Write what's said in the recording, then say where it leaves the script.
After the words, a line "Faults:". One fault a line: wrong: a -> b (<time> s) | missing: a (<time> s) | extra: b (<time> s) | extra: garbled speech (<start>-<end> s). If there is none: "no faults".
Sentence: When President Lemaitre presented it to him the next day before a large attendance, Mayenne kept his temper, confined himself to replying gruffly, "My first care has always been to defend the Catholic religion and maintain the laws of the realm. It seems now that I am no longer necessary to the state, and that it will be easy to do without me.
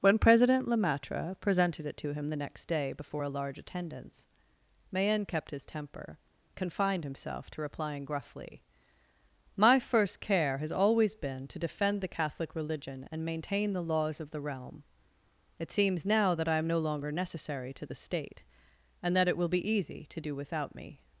When President Lemaitre presented it to him the next day before a large attendance, Mayenne kept his temper, confined himself to replying gruffly, "My first care has always been to defend the Catholic religion and maintain the laws of the realm. It seems now that I am no longer necessary to the state, and that it will be easy to do without me.
Faults:
no faults